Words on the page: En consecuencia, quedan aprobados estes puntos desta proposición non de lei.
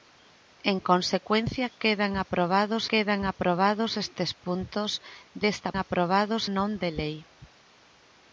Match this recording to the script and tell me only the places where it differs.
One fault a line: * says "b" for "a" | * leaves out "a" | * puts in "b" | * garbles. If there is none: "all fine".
* puts in "quedan aprobados"
* says "aprobados" for "proposición"